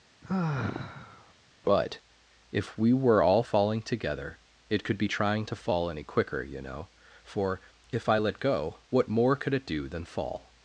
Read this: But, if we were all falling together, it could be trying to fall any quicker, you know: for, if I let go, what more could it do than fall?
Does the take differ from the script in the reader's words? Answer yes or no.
no